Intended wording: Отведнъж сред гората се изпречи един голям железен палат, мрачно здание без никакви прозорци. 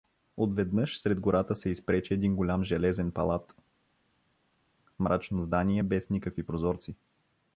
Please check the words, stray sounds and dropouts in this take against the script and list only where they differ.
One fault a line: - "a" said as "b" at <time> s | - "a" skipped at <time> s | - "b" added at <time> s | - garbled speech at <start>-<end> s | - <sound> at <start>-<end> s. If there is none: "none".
none